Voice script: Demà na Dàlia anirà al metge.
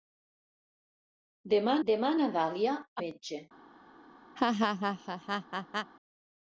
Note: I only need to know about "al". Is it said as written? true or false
false